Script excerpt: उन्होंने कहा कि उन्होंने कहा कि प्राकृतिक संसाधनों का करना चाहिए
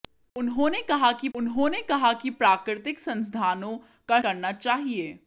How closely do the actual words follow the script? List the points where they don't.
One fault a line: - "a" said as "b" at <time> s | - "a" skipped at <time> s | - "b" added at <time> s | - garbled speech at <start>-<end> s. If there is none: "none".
none